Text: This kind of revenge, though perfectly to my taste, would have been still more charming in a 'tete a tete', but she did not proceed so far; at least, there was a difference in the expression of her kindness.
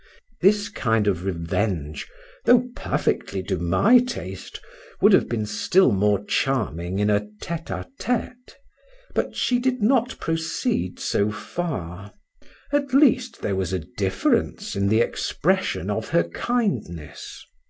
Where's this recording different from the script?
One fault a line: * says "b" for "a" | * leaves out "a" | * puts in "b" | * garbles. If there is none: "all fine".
all fine